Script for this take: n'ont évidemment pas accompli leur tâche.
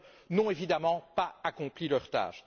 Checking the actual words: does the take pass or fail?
pass